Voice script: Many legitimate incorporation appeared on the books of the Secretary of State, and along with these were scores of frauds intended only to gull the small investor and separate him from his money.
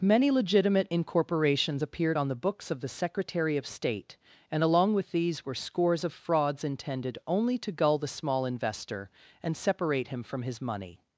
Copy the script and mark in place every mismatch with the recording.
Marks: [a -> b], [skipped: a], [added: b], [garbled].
Many legitimate [incorporation -> incorporations] appeared on the books of the Secretary of State, and along with these were scores of frauds intended only to gull the small investor and separate him from his money.